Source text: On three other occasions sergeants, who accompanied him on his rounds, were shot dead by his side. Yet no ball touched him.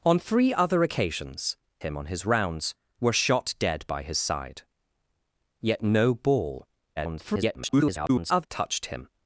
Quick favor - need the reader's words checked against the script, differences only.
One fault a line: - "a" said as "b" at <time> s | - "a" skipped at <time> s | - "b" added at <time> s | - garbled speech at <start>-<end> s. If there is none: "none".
- "sergeants who accompanied" skipped at 1.6 s
- garbled speech at 7.0-8.5 s